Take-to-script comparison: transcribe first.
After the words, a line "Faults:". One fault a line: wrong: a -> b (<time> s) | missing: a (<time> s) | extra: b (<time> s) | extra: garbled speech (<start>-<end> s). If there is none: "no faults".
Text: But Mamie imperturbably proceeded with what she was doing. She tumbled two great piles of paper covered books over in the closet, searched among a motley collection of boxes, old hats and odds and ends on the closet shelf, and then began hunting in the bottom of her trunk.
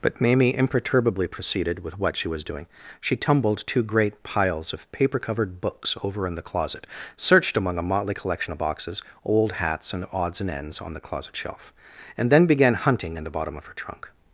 But Mamie imperturbably proceeded with what she was doing. She tumbled two great piles of paper covered books over in the closet, searched among a motley collection of boxes, old hats and odds and ends on the closet shelf, and then began hunting in the bottom of her trunk.
Faults:
no faults